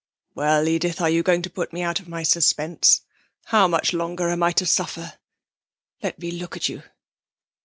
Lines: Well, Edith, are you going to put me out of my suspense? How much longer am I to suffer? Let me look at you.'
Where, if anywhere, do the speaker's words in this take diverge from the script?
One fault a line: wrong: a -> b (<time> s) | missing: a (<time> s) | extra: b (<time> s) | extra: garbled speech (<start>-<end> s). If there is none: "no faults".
no faults